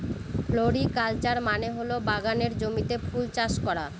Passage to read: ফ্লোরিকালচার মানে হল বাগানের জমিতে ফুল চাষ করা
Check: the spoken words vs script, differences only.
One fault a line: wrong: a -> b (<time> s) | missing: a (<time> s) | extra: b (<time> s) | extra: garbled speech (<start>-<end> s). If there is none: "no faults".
no faults